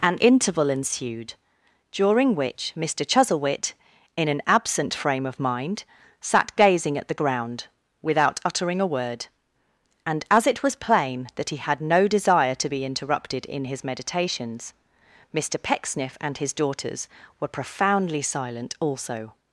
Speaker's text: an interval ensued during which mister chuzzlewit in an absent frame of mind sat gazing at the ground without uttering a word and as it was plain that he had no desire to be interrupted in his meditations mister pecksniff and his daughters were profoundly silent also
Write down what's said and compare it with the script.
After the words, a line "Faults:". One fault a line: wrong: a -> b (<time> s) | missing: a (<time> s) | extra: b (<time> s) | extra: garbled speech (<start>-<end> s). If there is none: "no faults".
an interval ensued during which mister chuzzlewit in an absent frame of mind sat gazing at the ground without uttering a word and as it was plain that he had no desire to be interrupted in his meditations mister pecksniff and his daughters were profoundly silent also
Faults:
no faults